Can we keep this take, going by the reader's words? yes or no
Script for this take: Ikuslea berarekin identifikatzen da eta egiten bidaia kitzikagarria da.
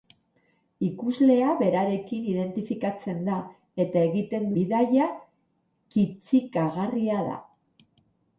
yes